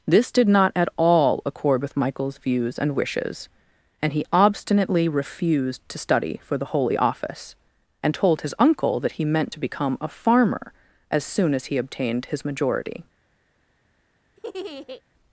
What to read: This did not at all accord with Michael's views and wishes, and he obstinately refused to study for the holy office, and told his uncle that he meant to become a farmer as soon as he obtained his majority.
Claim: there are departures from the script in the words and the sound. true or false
true